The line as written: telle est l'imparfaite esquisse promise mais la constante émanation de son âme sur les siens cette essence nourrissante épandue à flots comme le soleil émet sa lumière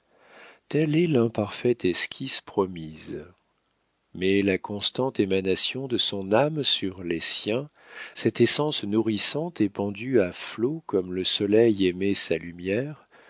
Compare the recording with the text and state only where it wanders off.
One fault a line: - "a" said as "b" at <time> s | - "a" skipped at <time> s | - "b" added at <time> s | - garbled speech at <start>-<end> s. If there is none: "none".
none